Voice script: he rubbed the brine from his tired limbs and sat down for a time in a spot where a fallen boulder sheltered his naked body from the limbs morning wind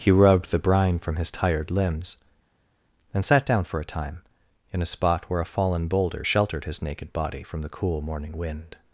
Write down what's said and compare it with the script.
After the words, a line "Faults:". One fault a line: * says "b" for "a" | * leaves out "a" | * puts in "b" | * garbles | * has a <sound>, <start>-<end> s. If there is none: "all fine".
he rubbed the brine from his tired limbs and sat down for a time in a spot where a fallen boulder sheltered his naked body from the cool morning wind
Faults:
* says "cool" for "limbs"